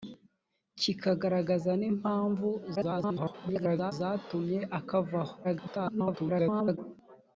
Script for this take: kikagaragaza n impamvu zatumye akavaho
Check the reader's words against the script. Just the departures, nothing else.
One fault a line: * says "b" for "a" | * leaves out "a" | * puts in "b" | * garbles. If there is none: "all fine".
* garbles
* garbles